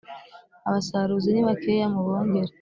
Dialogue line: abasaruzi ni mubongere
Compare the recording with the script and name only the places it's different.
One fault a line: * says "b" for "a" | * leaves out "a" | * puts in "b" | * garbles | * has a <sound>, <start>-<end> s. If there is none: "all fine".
* puts in "bakeya"